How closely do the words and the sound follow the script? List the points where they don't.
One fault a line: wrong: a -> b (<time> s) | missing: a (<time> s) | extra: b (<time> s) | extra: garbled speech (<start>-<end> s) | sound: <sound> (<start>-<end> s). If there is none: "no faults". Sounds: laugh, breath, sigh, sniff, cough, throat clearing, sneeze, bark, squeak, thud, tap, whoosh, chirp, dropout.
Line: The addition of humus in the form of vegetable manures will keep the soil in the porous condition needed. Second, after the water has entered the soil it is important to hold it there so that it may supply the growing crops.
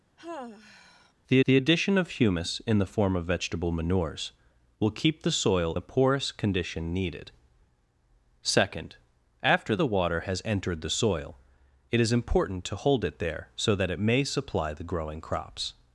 sound: sigh (0.2-1.1 s)
extra: the (1.4 s)
missing: in (5.7 s)